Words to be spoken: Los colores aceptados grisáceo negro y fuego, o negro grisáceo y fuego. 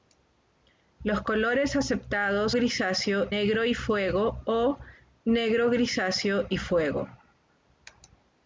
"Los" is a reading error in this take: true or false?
false